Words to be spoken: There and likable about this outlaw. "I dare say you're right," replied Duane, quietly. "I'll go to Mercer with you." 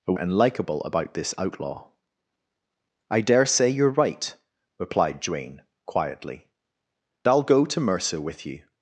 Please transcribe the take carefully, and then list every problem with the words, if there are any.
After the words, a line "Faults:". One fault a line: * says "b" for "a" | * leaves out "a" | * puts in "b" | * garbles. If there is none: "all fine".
There and likable about this outlaw. "I dare say you're right," replied Duane, quietly. "I'll go to Mercer with you."
Faults:
all fine